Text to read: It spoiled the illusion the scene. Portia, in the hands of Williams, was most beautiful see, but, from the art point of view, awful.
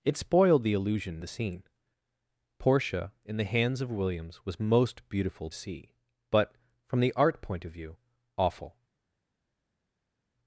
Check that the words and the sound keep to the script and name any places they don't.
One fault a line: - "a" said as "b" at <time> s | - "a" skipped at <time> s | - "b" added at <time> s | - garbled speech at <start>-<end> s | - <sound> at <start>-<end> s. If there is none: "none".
none